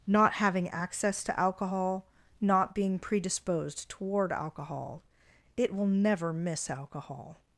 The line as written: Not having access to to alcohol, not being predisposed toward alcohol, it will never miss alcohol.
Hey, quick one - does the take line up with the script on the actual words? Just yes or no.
no